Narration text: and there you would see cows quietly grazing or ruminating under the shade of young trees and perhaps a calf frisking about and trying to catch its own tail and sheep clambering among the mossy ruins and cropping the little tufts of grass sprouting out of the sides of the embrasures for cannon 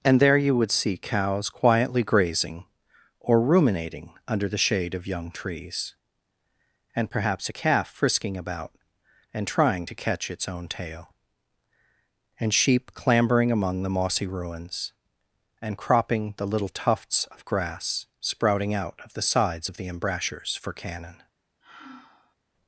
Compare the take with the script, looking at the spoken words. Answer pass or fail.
pass